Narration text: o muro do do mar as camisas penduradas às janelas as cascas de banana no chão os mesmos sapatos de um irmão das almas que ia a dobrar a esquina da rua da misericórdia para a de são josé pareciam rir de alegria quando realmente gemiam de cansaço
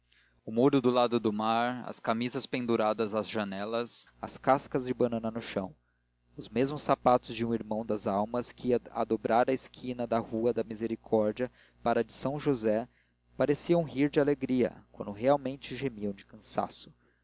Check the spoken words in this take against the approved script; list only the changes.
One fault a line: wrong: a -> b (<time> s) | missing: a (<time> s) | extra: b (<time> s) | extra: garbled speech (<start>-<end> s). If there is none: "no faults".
extra: lado (0.9 s)